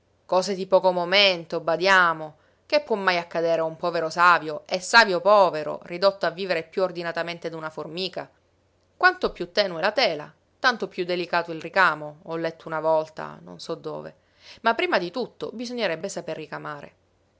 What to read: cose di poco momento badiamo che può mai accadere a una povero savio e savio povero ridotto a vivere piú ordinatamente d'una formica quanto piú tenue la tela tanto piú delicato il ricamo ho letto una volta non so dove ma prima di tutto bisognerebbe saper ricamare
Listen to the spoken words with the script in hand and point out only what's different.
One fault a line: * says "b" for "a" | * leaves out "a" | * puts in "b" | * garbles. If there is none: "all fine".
* says "un" for "una"